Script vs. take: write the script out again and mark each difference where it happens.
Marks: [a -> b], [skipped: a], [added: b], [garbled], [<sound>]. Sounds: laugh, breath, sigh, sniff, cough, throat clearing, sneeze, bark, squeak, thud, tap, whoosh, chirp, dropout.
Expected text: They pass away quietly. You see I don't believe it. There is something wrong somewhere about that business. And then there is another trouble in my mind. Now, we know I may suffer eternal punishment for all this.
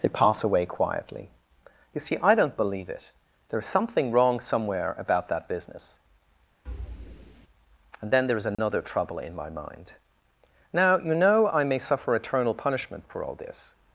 They pass away quietly. You see I don't believe it. There is something wrong somewhere about that business. [thud] And then there is another [dropout] trouble in my mind. Now, [we -> you] know I may suffer eternal punishment for all this.